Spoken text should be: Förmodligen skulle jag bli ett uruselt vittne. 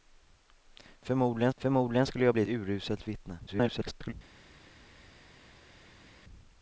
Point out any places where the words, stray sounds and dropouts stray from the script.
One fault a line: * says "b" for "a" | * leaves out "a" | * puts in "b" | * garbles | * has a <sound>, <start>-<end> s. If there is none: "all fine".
* puts in "förmodligen"
* leaves out "ett"
* garbles